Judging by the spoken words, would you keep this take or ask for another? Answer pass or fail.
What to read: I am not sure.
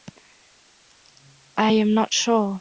pass